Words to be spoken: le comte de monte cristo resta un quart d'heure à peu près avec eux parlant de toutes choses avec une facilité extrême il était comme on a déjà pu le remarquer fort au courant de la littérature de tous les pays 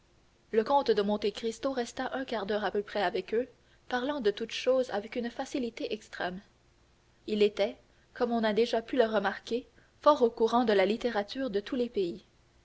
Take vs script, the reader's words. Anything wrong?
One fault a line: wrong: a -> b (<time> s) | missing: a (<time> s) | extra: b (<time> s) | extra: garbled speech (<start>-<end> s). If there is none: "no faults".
no faults